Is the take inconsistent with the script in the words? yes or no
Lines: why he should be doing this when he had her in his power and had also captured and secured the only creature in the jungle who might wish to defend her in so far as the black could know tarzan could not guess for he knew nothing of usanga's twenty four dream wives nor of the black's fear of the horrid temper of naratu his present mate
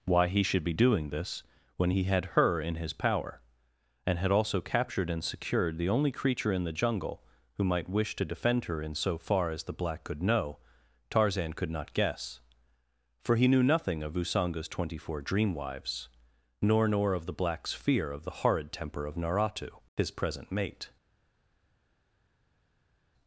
yes